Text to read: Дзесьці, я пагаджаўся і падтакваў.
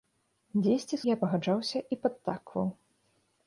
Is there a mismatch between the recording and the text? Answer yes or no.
no